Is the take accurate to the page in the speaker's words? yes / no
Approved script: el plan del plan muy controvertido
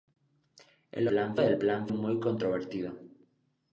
yes